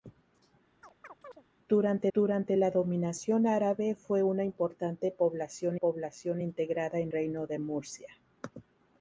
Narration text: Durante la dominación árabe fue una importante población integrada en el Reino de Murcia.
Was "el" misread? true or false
true